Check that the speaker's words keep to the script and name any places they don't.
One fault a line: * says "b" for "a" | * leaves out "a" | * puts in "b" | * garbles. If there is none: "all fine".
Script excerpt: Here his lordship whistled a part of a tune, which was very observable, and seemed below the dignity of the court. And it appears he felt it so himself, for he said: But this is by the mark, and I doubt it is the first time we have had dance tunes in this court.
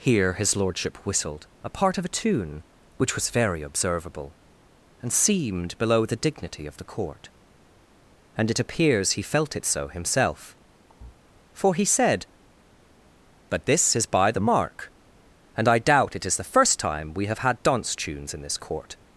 all fine